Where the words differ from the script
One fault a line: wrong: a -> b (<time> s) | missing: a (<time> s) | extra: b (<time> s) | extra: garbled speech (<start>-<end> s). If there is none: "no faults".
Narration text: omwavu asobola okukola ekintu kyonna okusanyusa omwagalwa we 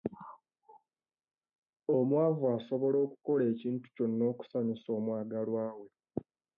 no faults